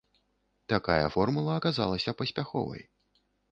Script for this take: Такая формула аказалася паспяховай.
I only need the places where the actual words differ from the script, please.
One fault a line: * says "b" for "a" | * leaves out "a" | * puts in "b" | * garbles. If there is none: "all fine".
all fine